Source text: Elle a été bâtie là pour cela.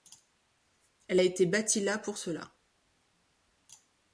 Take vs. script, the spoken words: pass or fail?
pass